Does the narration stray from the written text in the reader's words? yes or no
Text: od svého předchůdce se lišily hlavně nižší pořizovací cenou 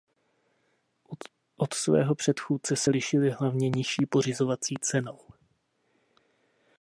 no